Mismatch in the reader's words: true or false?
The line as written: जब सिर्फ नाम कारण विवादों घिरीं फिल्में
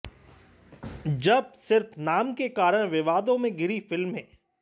true